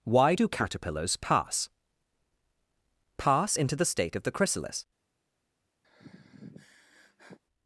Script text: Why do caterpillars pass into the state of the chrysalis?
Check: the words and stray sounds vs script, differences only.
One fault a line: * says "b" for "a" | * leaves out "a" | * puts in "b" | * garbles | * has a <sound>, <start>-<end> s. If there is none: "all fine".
* puts in "pass"
* has a sigh, 5.8-7.4 s